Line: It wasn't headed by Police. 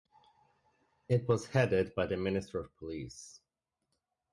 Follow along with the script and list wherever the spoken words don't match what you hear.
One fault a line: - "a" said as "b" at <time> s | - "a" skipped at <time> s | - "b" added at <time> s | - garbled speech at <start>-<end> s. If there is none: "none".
- "wasn't" said as "was" at 1.3 s
- "the Minister of" added at 2.1 s